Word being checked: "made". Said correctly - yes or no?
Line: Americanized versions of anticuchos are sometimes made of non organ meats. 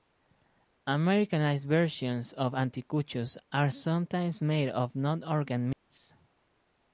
yes